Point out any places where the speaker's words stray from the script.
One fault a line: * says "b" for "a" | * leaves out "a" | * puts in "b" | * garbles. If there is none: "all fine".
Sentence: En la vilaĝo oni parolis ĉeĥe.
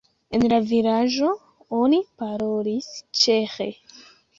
all fine